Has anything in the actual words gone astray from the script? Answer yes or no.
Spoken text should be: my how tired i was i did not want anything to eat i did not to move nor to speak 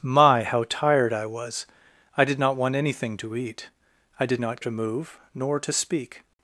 no